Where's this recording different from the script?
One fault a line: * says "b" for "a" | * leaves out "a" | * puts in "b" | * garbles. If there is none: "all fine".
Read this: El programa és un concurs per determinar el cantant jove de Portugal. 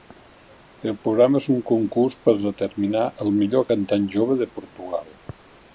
* puts in "millor"